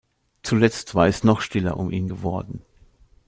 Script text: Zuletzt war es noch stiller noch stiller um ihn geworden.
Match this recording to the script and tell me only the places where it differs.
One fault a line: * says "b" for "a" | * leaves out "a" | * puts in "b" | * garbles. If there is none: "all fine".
* leaves out "noch stiller"